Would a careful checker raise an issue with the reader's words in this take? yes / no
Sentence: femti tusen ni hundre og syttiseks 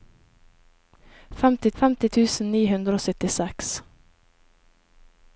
yes